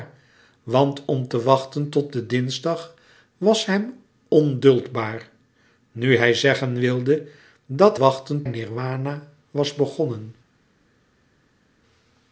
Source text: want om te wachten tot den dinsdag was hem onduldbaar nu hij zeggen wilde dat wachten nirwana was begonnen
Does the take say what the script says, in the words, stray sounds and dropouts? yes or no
yes